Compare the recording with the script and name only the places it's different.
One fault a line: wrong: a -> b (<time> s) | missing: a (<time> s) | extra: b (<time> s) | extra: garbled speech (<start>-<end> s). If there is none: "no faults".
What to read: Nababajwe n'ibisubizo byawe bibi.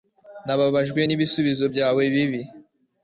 no faults